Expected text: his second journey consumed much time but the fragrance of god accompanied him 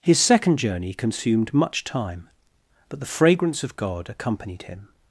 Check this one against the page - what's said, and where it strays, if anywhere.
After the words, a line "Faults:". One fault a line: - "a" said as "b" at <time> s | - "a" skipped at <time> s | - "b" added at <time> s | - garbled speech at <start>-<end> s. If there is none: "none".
his second journey consumed much time but the fragrance of god accompanied him
Faults:
none